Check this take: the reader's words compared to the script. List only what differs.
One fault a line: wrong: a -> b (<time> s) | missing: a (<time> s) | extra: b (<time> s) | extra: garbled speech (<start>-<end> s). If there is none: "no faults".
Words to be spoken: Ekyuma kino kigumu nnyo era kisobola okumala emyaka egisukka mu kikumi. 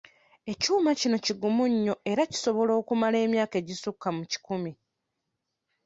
no faults